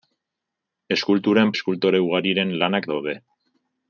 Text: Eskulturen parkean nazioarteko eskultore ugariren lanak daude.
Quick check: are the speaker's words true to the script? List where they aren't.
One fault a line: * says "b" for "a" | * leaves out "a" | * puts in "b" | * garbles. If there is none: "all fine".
* leaves out "parkean nazioarteko"